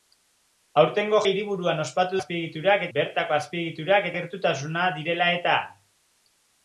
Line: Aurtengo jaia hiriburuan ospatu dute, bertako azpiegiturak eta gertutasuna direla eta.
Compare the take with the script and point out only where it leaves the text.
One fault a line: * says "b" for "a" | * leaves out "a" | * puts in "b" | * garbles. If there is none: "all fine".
* leaves out "jaia"
* says "azpiegiturak" for "dute"
* leaves out "eta"